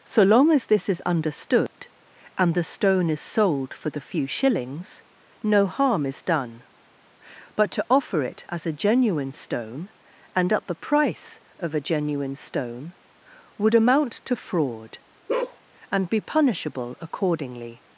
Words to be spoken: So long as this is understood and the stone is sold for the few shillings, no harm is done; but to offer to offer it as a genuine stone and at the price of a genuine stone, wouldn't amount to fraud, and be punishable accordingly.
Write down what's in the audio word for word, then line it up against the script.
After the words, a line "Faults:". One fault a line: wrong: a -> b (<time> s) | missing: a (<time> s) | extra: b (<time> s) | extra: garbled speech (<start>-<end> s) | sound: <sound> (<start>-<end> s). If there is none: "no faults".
So long as this is understood and the stone is sold for the few shillings, no harm is done; but to offer it as a genuine stone and at the price of a genuine stone, would amount to fraud, and be punishable accordingly.
Faults:
sound: dropout (1.7-1.8 s)
missing: to offer (8.2 s)
wrong: wouldn't -> would (13.6 s)
sound: bark (15.3-15.6 s)